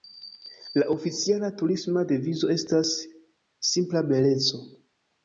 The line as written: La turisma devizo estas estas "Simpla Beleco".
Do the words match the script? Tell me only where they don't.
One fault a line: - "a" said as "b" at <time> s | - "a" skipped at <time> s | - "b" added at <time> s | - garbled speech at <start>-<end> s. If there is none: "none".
- "oficiala" added at 0.9 s
- "estas" skipped at 2.9 s